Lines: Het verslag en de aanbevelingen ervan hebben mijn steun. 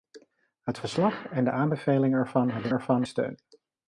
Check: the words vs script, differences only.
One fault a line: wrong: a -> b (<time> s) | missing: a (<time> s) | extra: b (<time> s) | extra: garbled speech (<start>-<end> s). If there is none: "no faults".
wrong: mijn -> ervan (2.7 s)